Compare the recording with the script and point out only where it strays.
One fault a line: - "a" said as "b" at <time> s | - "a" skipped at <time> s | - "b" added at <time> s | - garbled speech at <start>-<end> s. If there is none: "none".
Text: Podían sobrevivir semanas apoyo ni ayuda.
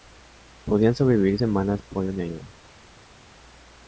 none